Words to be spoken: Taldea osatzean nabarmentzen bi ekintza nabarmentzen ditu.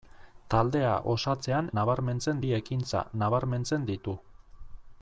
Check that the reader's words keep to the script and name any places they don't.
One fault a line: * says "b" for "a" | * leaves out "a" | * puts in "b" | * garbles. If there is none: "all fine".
all fine